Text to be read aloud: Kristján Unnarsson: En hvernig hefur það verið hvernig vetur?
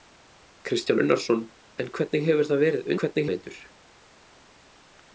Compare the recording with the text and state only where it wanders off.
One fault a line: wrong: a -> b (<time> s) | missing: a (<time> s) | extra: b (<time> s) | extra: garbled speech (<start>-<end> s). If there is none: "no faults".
no faults